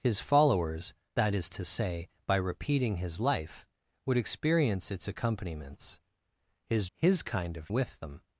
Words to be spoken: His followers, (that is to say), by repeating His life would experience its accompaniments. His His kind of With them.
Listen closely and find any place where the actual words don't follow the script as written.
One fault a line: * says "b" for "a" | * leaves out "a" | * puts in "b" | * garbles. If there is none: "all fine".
all fine